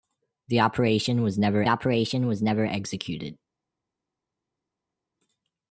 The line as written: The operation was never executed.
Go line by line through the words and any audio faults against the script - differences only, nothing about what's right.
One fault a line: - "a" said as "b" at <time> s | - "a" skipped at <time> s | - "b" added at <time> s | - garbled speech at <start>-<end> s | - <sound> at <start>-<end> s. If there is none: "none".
- "operation was never" added at 1.7 s